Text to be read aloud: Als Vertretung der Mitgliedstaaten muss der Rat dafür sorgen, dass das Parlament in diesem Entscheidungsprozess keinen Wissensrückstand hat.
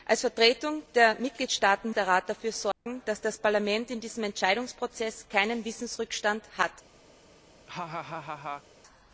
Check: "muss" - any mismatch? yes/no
yes